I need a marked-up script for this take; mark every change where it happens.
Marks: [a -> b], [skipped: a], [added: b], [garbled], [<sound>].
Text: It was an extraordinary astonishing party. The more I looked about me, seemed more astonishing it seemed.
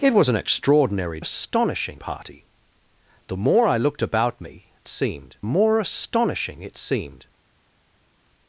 It was an extraordinary astonishing party. The more I looked about me, seemed more astonishing it seemed.